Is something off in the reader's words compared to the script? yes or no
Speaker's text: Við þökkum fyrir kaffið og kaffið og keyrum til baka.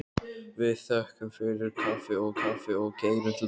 no